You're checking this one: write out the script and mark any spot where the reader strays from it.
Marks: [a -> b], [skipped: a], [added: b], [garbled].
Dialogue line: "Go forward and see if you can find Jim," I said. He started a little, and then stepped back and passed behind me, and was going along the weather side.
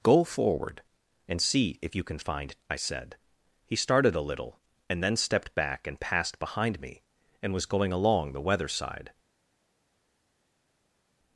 "Go forward and see if you can find [skipped: Jim,"] I said. He started a little, and then stepped back and passed behind me, and was going along the weather side.